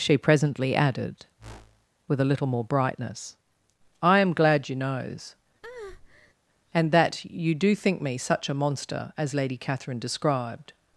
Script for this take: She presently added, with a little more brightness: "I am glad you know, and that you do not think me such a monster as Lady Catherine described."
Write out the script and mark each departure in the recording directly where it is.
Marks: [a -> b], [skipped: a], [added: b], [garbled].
She presently added, with a little more brightness: "I am glad you [know, -> knows] and that you do [skipped: not] think me such a monster as Lady Catherine described."